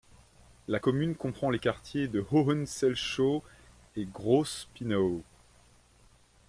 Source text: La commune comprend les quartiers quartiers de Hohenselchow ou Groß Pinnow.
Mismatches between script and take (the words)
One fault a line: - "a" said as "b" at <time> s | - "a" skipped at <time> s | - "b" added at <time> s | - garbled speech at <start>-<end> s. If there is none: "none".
- "quartiers" skipped at 2.1 s
- "ou" said as "et" at 3.9 s